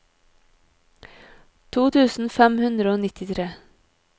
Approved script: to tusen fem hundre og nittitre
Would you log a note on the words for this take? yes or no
no